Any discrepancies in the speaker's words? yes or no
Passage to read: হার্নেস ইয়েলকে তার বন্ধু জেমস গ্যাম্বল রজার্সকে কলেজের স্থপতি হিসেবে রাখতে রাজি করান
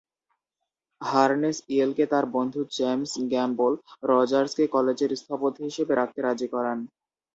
no